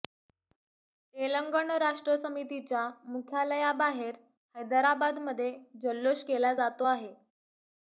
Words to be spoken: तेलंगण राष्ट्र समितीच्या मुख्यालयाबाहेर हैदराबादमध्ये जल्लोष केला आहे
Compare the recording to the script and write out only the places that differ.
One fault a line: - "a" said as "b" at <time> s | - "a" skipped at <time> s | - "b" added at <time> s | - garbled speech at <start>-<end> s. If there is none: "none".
- "जातो" added at 6.5 s